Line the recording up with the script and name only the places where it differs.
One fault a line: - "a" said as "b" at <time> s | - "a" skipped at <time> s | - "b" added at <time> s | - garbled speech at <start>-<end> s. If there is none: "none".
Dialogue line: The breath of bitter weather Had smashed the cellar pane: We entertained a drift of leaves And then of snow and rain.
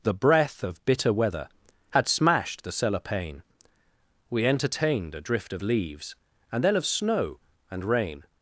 none